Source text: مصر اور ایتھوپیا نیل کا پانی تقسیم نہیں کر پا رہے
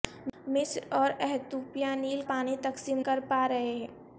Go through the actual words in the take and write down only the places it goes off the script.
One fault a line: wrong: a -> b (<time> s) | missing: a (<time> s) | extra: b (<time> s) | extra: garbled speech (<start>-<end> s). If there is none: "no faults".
missing: کا (2.2 s)
missing: نہیں (3.0 s)